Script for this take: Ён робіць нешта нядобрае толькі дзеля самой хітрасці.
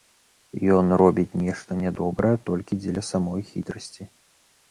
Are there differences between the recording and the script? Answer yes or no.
no